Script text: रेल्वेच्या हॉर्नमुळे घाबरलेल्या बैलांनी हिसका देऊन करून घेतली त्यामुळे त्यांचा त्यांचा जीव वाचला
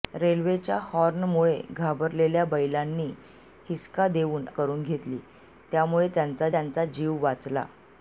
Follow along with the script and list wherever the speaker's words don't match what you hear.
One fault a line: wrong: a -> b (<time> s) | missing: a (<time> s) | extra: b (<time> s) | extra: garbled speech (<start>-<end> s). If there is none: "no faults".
no faults